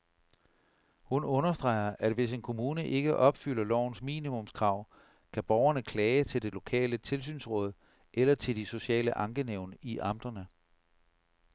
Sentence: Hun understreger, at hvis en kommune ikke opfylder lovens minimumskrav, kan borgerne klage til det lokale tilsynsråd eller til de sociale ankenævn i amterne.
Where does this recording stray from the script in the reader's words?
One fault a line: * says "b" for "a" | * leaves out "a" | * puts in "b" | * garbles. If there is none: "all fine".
all fine